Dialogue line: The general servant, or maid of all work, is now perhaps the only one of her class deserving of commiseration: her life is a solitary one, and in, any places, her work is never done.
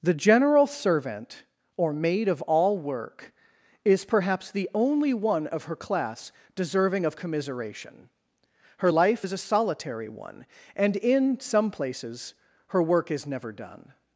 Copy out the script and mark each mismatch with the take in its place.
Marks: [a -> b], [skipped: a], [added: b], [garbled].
The general servant, or maid of all work, is [skipped: now] perhaps the only one of her class deserving of commiseration: her life is a solitary one, and in, [any -> some] places, her work is never done.